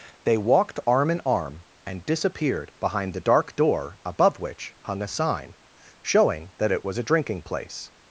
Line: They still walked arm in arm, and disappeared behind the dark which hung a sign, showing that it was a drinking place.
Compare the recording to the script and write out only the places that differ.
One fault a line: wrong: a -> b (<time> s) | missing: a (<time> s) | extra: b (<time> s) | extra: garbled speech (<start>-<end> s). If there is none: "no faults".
missing: still (0.4 s)
extra: door above (3.5 s)